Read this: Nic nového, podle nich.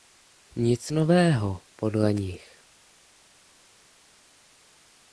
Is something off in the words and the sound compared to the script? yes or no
no